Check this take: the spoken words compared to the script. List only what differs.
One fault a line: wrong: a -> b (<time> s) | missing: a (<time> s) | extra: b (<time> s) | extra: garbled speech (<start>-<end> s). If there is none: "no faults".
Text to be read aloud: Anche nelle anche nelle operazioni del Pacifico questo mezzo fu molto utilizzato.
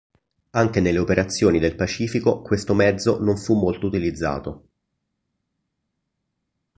missing: anche nelle (1.0 s)
extra: non (3.2 s)